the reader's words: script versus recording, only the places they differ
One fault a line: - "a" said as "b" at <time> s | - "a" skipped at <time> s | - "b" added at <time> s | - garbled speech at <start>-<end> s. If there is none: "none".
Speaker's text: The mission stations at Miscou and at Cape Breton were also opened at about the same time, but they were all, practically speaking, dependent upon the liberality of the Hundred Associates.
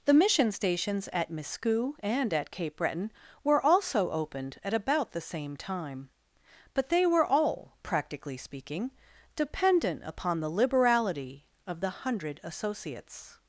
none